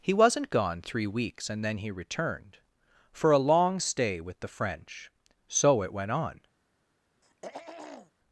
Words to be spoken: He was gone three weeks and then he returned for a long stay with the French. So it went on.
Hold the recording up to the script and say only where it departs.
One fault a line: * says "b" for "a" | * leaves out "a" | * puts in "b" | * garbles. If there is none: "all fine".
* says "wasn't" for "was"